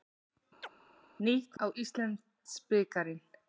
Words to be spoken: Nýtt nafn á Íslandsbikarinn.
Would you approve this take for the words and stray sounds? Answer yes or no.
no